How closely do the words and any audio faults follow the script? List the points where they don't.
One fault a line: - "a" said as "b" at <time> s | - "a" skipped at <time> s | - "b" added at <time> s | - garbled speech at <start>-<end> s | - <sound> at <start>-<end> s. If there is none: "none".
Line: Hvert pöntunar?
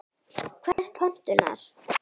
- dropout at 0.7-0.8 s